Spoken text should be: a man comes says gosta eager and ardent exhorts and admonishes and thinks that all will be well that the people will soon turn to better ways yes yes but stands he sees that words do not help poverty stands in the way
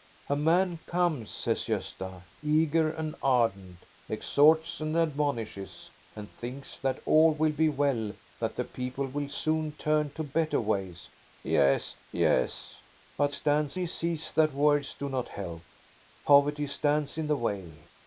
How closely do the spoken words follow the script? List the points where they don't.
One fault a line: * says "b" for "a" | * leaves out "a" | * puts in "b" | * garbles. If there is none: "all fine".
all fine